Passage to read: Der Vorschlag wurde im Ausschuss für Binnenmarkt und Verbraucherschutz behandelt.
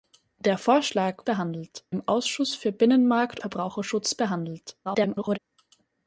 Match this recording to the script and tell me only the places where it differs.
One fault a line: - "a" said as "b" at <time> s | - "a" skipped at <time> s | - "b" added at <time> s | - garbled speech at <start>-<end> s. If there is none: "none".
- "wurde" said as "behandelt" at 1.2 s
- "und" skipped at 3.4 s
- garbled speech at 4.8-5.4 s